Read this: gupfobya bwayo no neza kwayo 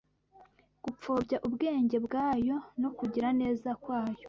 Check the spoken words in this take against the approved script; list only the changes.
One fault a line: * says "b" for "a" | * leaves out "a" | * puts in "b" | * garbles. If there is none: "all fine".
* puts in "ubwenge"
* puts in "kugira"